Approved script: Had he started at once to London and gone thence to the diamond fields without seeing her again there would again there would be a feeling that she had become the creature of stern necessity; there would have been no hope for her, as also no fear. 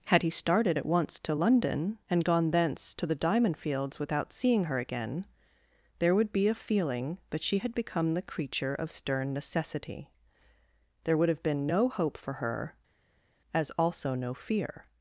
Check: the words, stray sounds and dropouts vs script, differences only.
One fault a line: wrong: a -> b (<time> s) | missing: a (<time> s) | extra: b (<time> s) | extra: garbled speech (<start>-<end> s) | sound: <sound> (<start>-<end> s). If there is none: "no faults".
missing: again there would (6.3 s)